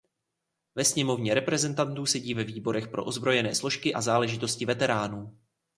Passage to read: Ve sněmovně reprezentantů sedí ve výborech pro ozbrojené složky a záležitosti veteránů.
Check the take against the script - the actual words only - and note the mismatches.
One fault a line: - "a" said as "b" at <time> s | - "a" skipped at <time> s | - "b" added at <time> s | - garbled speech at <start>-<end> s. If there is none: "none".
none